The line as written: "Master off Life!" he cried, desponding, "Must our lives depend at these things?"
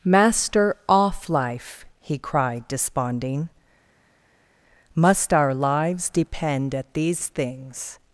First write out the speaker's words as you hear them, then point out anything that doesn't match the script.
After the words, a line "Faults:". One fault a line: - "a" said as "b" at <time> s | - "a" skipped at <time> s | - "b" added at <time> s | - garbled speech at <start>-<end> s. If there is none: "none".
"Master off Life!" he cried, desponding, "Must our lives depend at these things?"
Faults:
none